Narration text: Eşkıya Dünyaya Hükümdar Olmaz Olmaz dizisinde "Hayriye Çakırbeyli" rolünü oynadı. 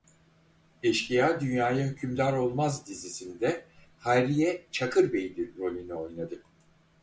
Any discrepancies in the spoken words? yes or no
yes